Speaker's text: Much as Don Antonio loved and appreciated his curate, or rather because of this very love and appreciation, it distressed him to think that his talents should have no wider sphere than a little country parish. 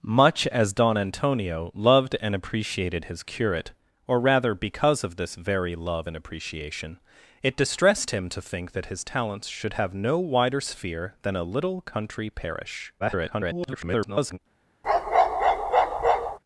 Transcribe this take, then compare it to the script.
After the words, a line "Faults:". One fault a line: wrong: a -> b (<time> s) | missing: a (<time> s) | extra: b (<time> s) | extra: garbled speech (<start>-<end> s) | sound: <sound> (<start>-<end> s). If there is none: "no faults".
Much as Don Antonio loved and appreciated his curate, or rather because of this very love and appreciation, it distressed him to think that his talents should have no wider sphere than a little country parish. [garbled]
Faults:
extra: garbled speech (13.0-14.4 s)
sound: bark (14.8-16.4 s)